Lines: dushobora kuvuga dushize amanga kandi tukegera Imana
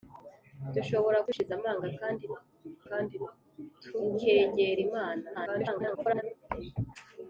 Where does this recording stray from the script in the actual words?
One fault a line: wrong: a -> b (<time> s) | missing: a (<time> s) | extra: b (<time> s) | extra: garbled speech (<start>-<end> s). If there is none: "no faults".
missing: kuvuga (1.2 s)
extra: kandi (2.9 s)
extra: garbled speech (5.3-6.2 s)